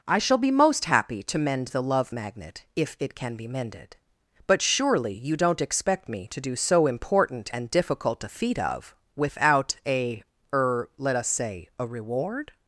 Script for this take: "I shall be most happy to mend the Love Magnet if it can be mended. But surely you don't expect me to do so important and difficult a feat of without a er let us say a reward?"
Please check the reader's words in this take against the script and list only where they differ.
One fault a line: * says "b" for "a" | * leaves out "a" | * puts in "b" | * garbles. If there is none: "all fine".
all fine